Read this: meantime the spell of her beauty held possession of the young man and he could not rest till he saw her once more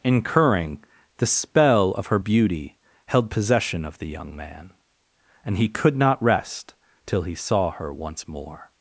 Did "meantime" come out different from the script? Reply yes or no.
yes